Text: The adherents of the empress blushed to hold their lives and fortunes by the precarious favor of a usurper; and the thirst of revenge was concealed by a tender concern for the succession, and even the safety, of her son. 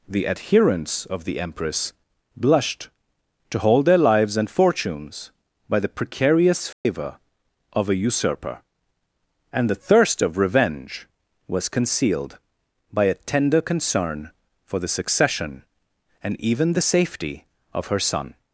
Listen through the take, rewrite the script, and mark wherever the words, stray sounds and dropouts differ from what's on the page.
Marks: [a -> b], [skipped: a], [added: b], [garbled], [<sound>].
The adherents of the empress blushed to hold their lives and fortunes by the precarious favor [dropout] of a usurper; and the thirst of revenge was concealed by a tender concern for the succession, and even the safety, of her son.